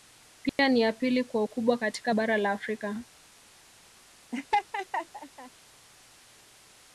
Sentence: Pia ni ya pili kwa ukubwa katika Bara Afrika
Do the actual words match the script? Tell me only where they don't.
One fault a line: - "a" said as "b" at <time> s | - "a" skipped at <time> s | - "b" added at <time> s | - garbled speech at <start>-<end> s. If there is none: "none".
- "la" added at 2.4 s